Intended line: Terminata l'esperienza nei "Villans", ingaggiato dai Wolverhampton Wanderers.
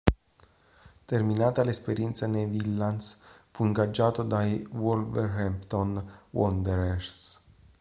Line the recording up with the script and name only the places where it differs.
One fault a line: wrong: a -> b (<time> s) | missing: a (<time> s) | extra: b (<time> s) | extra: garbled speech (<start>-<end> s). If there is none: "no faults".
extra: fu (3.5 s)